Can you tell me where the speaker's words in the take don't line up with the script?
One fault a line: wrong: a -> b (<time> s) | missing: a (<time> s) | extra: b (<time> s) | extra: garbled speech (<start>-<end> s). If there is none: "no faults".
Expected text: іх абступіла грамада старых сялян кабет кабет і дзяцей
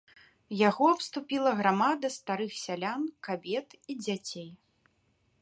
wrong: іх -> яго (0.7 s)
missing: кабет (3.7 s)